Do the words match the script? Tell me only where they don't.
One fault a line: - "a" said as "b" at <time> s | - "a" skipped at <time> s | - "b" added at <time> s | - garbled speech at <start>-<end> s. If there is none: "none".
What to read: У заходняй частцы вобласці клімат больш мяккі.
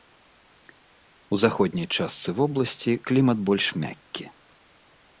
none